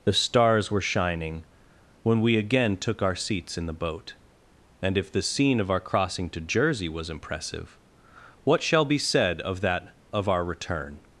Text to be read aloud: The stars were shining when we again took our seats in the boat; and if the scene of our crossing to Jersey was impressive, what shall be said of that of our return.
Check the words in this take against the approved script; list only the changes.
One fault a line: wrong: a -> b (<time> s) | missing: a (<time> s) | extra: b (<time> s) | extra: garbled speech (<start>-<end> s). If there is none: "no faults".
no faults